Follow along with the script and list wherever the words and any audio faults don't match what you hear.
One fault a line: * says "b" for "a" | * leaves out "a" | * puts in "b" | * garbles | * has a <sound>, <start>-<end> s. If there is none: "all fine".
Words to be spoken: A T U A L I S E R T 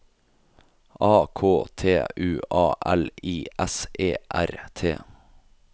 * puts in "K"